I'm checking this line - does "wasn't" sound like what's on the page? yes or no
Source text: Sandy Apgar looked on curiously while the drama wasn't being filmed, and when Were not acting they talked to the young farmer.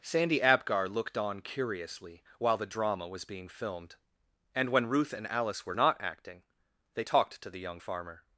no